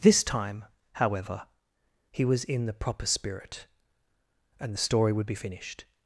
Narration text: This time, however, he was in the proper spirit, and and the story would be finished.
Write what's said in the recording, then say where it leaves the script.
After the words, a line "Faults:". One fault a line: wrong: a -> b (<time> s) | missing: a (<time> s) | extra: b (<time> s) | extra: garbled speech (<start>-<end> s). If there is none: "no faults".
This time, however, he was in the proper spirit, and the story would be finished.
Faults:
missing: and (4.7 s)